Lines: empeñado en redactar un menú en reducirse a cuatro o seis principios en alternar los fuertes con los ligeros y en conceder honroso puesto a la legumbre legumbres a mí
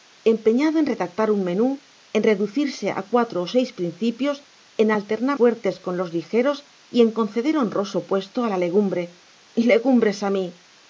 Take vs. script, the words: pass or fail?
fail